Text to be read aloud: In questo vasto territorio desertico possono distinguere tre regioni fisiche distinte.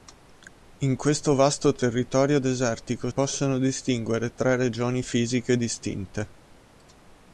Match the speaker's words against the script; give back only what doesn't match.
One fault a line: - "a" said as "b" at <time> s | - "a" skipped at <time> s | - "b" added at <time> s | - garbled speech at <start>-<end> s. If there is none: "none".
none